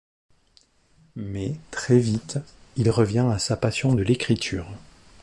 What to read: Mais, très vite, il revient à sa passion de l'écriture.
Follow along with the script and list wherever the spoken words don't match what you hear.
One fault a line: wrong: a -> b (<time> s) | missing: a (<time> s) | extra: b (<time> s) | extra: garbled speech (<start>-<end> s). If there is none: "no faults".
no faults